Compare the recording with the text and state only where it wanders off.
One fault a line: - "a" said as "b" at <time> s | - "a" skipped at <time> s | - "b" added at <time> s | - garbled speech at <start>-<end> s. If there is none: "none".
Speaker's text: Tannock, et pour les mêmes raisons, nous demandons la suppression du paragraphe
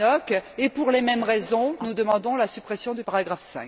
none